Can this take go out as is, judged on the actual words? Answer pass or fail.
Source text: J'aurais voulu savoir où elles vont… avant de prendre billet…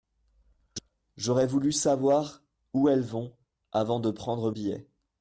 pass